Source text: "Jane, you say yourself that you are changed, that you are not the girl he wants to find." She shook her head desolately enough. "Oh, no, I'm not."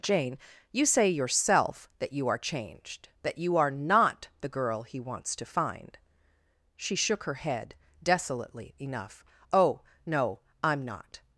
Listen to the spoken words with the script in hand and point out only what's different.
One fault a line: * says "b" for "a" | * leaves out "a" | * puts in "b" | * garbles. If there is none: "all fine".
all fine